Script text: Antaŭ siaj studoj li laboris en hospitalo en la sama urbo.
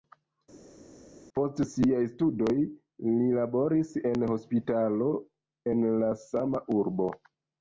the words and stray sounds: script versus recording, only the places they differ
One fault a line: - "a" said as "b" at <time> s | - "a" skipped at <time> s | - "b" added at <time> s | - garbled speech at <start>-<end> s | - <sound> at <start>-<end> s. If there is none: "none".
- "Antaŭ" said as "Post" at 1.4 s